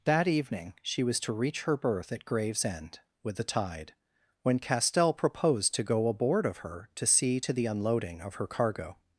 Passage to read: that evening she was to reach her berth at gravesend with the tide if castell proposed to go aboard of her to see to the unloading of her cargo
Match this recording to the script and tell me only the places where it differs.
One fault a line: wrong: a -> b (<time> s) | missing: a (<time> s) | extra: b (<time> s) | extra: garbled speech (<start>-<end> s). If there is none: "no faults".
wrong: if -> when (4.4 s)